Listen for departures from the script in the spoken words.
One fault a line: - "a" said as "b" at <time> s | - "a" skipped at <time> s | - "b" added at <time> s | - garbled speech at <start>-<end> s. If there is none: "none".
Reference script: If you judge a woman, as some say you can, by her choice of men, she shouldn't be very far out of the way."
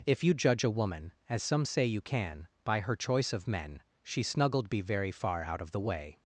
- "shouldn't" said as "snuggled" at 4.2 s